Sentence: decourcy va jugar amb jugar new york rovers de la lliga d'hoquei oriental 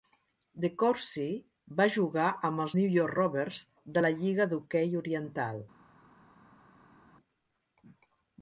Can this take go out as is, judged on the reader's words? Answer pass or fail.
fail